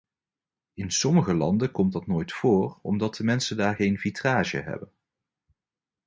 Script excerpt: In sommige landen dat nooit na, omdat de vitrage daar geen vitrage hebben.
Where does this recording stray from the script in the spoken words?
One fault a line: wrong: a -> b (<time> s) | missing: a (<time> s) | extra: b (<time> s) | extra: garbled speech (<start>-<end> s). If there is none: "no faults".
extra: komt (1.7 s)
wrong: na -> voor (2.3 s)
wrong: vitrage -> mensen (3.2 s)